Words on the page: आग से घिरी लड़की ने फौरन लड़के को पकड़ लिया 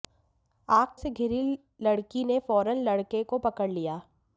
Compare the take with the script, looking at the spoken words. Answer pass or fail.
pass